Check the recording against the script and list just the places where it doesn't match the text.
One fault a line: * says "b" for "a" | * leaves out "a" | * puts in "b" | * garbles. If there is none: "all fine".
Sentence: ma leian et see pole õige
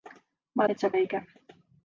* leaves out "leian"
* leaves out "pole"